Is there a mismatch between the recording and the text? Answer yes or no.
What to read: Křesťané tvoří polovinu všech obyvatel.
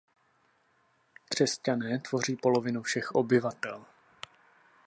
no